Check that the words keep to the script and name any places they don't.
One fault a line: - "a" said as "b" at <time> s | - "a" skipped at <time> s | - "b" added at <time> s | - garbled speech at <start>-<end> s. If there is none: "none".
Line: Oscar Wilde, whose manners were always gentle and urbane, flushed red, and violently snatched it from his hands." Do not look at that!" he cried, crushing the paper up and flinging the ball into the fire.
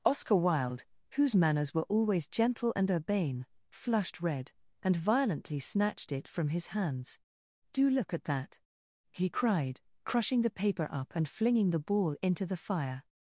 - "not" skipped at 7.9 s